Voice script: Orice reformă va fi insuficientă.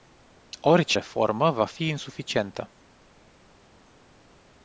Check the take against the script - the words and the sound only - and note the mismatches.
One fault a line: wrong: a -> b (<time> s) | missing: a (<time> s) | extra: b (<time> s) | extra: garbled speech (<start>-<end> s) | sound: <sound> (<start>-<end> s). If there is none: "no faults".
no faults